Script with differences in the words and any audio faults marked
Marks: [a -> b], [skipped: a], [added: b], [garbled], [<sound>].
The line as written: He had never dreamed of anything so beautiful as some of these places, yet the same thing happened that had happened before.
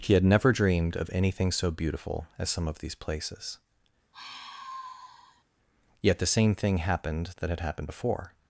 He had never dreamed of anything so beautiful as some of these places, [sigh] yet the same thing happened that had happened before.